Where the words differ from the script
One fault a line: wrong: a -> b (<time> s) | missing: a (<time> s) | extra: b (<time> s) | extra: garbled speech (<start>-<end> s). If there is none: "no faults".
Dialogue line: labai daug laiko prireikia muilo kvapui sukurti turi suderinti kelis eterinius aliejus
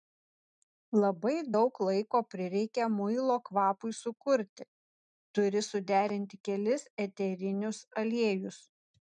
no faults